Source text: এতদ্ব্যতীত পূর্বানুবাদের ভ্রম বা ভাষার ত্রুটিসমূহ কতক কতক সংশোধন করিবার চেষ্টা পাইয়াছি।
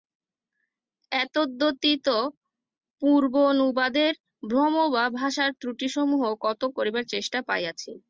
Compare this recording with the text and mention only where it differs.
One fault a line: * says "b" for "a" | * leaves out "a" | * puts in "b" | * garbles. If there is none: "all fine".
* leaves out "কতক সংশোধন"